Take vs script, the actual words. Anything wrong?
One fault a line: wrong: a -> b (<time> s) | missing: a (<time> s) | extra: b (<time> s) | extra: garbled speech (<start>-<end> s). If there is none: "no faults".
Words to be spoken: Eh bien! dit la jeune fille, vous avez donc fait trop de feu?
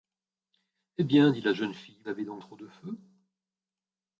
missing: vous (2.0 s)
missing: fait (2.5 s)